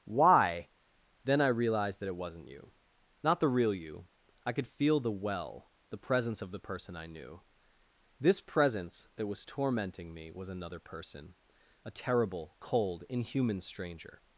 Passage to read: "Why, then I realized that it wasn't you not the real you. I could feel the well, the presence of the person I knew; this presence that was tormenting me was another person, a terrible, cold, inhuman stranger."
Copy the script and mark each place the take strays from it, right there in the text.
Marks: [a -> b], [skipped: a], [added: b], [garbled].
"Why, then I realized that it wasn't you not the real you. I could feel the well, the presence of the person I knew; this presence that was tormenting me was another person, a terrible, cold, inhuman stranger."